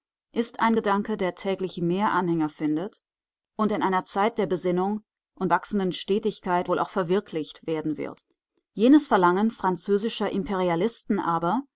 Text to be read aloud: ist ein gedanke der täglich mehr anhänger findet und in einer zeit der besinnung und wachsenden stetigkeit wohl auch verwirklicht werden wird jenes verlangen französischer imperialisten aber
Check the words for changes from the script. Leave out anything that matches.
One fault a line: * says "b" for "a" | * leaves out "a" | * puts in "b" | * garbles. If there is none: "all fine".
all fine